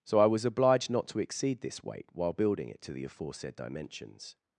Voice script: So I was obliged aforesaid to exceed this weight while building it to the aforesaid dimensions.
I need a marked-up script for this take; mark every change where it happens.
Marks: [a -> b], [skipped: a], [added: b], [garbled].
So I was obliged [aforesaid -> not] to exceed this weight while building it to the aforesaid dimensions.